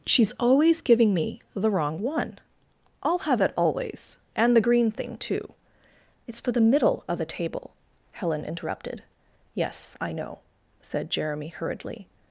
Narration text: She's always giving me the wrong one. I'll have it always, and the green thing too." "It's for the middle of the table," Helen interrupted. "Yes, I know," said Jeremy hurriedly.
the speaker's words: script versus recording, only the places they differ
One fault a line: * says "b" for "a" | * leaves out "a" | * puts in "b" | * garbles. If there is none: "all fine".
all fine